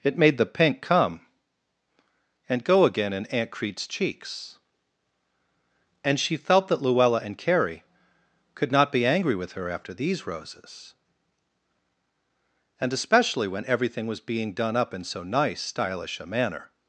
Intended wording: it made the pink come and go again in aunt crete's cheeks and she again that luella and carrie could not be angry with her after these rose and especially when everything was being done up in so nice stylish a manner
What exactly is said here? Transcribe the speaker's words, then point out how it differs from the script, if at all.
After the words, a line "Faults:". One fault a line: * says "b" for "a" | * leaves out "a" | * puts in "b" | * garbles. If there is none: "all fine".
it made the pink come and go again in aunt crete's cheeks and she felt that luella and carrie could not be angry with her after these roses and especially when everything was being done up in so nice stylish a manner
Faults:
* says "felt" for "again"
* says "roses" for "rose"